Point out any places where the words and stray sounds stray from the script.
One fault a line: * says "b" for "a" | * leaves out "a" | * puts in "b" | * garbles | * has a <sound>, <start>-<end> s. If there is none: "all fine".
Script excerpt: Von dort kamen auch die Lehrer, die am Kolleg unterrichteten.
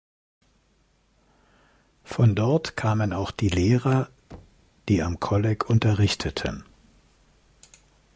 * has a thud, 4.3-4.7 s